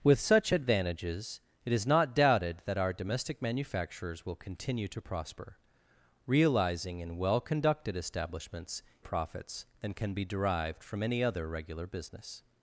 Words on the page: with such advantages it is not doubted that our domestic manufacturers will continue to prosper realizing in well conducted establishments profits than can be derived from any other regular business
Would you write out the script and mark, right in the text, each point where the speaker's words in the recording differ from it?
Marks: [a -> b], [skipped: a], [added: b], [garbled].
with such advantages it is not doubted that our domestic manufacturers will continue to prosper realizing in well conducted establishments profits than can be derived from any other regular business